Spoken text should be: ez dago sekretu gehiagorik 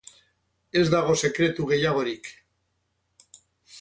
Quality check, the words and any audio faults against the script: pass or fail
pass